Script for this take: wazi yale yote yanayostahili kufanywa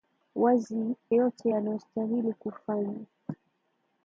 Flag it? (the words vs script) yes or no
yes